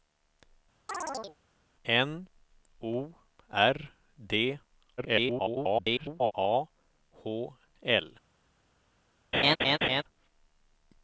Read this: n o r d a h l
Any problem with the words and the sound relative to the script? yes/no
yes